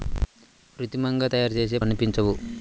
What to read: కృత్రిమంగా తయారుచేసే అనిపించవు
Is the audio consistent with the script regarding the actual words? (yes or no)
yes